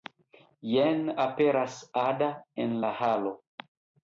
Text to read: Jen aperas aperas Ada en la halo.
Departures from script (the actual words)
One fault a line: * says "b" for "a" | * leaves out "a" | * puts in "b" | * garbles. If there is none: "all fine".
* leaves out "aperas"